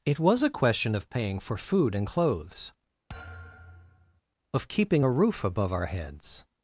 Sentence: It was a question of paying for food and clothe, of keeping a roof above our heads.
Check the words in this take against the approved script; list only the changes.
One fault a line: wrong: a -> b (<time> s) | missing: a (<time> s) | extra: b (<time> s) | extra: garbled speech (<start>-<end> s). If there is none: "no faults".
wrong: clothe -> clothes (2.0 s)